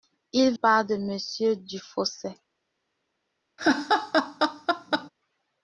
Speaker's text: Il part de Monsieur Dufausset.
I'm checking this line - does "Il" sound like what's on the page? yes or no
yes